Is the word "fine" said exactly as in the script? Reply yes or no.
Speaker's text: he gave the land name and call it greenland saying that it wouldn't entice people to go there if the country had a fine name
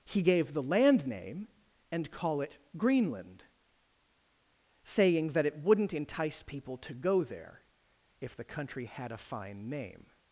yes